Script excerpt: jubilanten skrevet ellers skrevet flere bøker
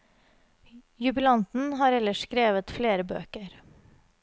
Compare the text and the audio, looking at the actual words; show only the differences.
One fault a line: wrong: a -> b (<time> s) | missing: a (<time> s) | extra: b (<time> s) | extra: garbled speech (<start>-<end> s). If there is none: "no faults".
wrong: skrevet -> har (1.7 s)